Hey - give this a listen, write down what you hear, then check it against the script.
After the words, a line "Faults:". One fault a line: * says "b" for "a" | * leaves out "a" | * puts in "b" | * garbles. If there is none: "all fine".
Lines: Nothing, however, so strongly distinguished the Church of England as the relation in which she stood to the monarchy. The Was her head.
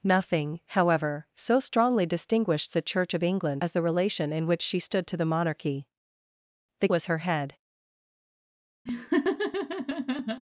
Nothing, however, so strongly distinguished the Church of England as the relation in which she stood to the monarchy. The Was her head.
Faults:
all fine